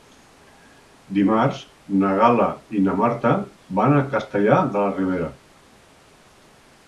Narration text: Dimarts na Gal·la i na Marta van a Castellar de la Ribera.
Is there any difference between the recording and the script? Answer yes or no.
no